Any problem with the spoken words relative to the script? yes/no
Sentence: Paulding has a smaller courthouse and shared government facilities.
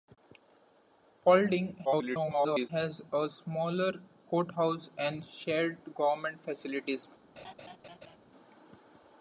yes